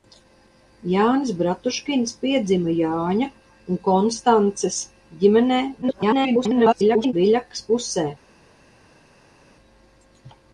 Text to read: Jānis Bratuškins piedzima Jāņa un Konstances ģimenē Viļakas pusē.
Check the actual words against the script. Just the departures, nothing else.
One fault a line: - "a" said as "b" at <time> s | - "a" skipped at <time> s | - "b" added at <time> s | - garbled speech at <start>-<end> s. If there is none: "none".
- garbled speech at 5.8-7.1 s